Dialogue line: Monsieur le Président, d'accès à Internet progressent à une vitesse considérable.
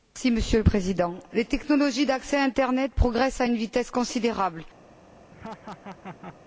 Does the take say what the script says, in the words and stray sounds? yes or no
no